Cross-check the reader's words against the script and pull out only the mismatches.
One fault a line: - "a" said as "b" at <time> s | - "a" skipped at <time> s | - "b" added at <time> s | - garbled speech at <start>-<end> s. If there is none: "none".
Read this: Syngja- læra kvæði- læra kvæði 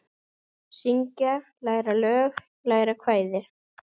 - "kvæði" said as "lög" at 2.0 s